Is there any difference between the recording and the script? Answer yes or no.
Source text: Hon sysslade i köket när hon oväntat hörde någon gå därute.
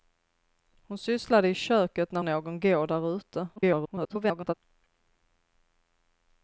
yes